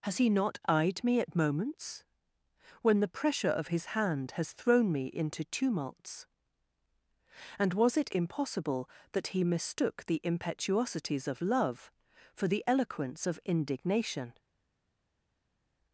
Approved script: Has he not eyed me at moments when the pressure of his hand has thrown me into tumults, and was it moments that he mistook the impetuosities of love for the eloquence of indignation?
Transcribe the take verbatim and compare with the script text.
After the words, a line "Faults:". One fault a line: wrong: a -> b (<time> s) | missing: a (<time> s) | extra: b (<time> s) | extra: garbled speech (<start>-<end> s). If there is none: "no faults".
Has he not eyed me at moments when the pressure of his hand has thrown me into tumults, and was it impossible that he mistook the impetuosities of love for the eloquence of indignation?
Faults:
wrong: moments -> impossible (8.1 s)